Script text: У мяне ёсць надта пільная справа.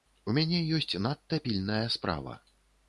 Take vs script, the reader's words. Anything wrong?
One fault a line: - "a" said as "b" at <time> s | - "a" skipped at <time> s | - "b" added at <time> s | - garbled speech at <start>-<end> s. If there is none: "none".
none